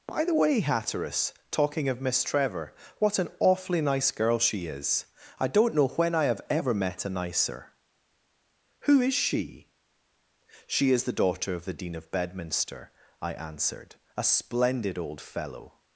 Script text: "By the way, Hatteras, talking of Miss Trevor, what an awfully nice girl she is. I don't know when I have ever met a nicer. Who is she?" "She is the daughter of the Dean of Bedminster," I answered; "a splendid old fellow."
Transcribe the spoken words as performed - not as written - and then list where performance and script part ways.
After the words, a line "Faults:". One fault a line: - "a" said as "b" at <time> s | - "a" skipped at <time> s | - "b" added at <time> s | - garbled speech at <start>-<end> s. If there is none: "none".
"By the way, Hatteras, talking of Miss Trevor, what an awfully nice girl she is. I don't know when I have ever met a nicer. Who is she?" "She is the daughter of the Dean of Bedminster," I answered; "a splendid old fellow."
Faults:
none